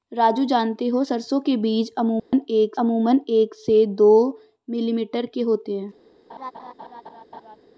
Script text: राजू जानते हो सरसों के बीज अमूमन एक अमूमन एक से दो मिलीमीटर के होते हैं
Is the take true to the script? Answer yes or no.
yes